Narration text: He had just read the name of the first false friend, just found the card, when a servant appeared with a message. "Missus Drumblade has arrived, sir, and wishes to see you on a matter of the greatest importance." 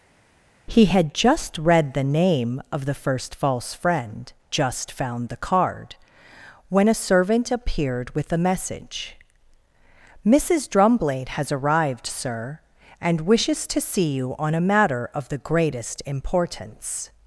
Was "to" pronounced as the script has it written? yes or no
yes